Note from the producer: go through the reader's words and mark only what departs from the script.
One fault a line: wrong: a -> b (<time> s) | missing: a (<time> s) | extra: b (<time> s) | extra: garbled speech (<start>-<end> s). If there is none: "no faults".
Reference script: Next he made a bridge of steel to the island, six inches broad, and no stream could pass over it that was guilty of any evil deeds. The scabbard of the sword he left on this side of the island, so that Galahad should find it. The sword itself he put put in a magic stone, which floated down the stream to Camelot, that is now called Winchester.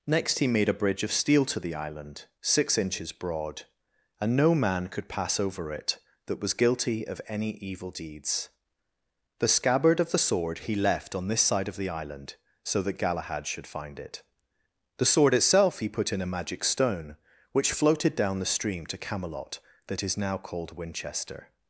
wrong: stream -> man (4.5 s)
missing: put (16.1 s)